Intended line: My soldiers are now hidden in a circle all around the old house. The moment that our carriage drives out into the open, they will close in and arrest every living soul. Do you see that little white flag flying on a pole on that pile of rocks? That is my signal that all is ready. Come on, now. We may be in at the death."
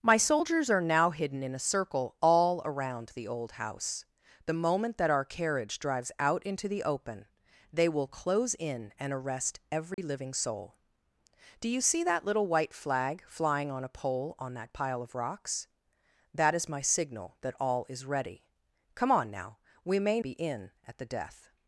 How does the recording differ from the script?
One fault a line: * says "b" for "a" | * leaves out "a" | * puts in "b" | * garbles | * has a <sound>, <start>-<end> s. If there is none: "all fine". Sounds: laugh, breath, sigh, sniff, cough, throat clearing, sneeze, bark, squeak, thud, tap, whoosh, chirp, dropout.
* has a dropout, 9.9-10.0 s